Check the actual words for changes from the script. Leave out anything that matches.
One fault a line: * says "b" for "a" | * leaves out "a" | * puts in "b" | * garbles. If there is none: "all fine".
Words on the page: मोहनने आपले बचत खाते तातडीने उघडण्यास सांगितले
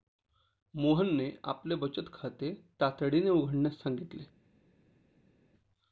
all fine